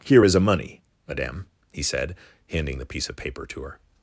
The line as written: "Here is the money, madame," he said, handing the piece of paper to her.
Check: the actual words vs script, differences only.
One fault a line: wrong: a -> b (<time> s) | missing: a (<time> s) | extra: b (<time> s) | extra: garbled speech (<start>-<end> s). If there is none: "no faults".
wrong: the -> a (0.3 s)